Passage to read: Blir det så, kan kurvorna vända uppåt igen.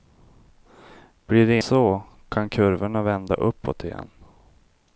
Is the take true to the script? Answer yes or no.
yes